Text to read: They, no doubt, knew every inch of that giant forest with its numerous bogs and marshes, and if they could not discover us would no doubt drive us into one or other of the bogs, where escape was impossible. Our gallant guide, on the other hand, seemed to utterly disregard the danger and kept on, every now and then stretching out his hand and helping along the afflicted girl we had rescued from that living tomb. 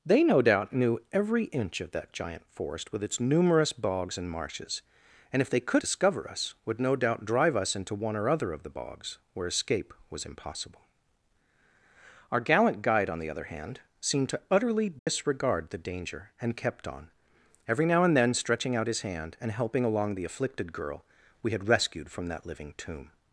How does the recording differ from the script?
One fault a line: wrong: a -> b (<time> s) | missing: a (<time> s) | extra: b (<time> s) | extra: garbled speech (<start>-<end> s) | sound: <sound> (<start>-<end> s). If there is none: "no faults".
missing: not (5.8 s)
sound: dropout (15.0-15.1 s)